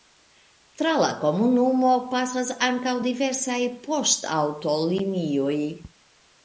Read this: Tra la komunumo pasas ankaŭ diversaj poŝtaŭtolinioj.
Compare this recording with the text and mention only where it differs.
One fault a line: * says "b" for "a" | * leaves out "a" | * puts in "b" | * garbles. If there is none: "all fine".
all fine